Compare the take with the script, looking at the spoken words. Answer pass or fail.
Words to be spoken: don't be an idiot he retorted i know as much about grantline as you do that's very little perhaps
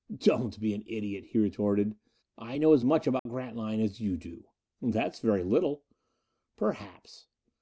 pass